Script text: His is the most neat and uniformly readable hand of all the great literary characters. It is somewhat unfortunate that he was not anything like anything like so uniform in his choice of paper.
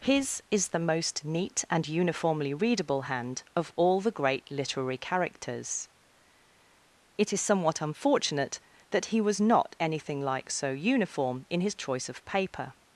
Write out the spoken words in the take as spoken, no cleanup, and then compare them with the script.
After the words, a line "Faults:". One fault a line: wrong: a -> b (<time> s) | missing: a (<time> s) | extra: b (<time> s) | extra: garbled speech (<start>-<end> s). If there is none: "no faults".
His is the most neat and uniformly readable hand of all the great literary characters. It is somewhat unfortunate that he was not anything like so uniform in his choice of paper.
Faults:
missing: anything like (10.5 s)